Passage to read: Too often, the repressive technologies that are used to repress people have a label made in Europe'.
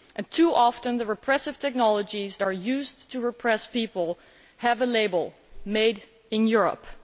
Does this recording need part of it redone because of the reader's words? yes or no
yes